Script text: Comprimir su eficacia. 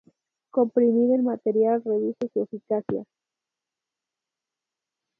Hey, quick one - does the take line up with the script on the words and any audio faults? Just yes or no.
no